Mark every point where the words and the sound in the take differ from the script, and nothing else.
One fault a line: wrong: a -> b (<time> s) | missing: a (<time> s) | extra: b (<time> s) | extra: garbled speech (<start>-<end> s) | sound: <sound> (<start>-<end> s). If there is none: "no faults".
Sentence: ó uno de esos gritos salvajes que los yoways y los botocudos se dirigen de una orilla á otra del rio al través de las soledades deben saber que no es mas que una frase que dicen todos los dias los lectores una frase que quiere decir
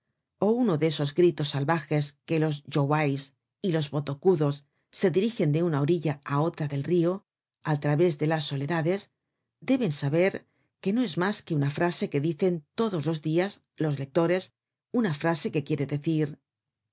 no faults